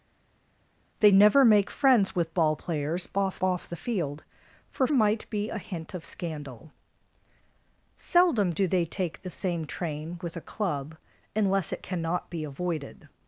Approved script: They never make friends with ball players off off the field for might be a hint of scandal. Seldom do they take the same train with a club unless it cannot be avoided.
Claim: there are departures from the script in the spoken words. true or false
false